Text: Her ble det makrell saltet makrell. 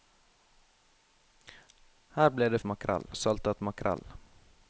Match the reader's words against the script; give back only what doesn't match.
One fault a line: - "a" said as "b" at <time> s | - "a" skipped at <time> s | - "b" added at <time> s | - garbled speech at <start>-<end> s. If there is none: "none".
none